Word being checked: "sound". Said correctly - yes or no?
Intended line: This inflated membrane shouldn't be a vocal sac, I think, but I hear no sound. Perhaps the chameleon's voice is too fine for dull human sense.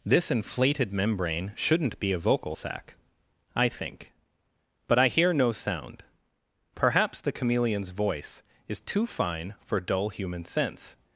yes